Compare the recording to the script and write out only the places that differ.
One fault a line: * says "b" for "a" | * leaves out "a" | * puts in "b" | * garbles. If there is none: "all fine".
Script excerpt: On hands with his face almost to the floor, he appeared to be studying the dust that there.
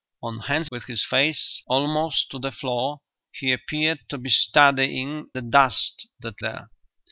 all fine